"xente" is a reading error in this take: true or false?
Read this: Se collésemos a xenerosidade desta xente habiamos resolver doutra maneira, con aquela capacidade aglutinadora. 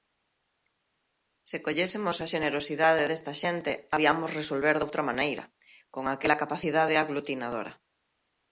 false